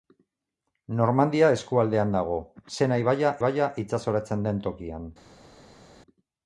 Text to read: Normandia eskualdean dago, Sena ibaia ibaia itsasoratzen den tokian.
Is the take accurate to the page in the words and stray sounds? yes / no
yes